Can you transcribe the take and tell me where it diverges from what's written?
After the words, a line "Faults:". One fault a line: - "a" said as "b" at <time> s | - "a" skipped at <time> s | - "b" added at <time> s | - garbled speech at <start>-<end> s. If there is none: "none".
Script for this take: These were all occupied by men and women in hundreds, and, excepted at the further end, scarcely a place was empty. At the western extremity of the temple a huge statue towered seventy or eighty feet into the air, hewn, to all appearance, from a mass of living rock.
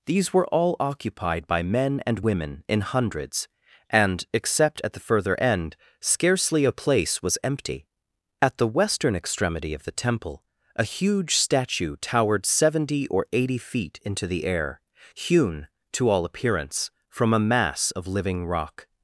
These were all occupied by men and women in hundreds, and, except at the further end, scarcely a place was empty. At the western extremity of the temple a huge statue towered seventy or eighty feet into the air, hewn, to all appearance, from a mass of living rock.
Faults:
- "excepted" said as "except" at 4.3 s